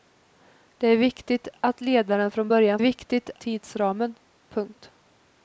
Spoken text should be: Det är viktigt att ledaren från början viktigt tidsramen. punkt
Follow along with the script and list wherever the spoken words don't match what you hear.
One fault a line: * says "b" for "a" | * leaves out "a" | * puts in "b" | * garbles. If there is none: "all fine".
all fine